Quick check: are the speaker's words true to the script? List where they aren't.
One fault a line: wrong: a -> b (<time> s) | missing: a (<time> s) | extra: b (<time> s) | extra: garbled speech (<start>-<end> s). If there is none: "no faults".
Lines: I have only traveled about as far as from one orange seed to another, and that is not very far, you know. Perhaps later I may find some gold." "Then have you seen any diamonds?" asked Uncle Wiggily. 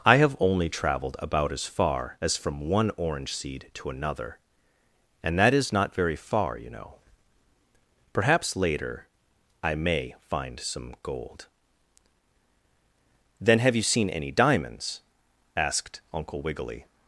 no faults